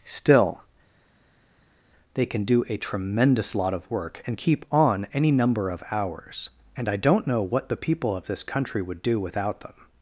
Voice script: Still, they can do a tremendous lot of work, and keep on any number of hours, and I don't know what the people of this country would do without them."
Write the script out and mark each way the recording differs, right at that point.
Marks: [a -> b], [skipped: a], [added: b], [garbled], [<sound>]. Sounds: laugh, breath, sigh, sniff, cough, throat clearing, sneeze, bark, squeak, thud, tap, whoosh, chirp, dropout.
Still, they can do a tremendous lot of work, and keep on any number of hours, and I don't know what the people of this country would do without them."